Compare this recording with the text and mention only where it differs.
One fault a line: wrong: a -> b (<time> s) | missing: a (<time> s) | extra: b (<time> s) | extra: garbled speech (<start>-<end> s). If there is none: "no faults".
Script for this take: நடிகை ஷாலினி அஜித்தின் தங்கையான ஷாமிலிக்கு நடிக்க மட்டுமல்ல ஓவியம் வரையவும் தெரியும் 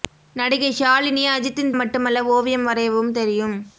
missing: தங்கையான ஷாமிலிக்கு நடிக்க (1.7 s)